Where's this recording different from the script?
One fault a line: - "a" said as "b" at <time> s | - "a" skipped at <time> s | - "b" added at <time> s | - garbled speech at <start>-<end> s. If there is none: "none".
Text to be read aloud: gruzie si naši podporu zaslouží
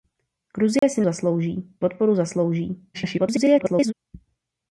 - "naši" said as "zaslouží" at 1.0 s
- garbled speech at 2.9-3.9 s